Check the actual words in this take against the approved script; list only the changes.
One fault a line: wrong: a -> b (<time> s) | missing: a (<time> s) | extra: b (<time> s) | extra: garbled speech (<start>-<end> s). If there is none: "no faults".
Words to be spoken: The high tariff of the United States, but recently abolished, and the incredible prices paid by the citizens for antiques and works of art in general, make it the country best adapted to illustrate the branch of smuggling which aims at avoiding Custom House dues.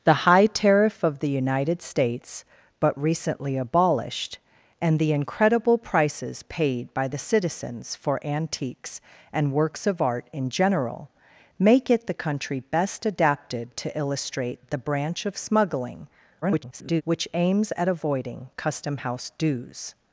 extra: garbled speech (16.4-17.0 s)